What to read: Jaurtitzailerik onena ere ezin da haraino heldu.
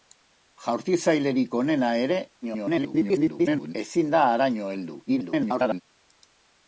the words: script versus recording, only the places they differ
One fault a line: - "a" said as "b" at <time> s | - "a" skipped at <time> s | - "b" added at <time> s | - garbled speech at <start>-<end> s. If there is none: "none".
- garbled speech at 2.4-3.7 s
- garbled speech at 5.1-5.8 s